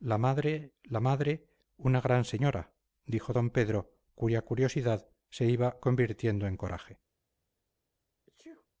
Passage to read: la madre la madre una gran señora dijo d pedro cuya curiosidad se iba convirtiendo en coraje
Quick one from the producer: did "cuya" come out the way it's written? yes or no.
yes